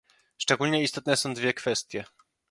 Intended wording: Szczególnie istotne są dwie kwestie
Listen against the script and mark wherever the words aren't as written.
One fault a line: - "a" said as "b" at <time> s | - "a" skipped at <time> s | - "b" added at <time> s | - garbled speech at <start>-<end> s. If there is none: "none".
none